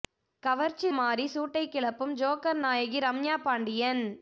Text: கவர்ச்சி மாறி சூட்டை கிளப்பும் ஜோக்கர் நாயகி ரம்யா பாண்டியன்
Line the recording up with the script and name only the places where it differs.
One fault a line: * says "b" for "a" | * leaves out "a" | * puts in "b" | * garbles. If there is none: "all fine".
all fine